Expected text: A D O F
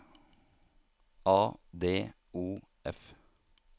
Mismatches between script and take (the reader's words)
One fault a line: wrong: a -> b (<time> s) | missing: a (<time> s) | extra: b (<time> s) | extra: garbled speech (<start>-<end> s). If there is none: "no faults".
no faults